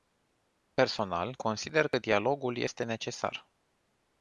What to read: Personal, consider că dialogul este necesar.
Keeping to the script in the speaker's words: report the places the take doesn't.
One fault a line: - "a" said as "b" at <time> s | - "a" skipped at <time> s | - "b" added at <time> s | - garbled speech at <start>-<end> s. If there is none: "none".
none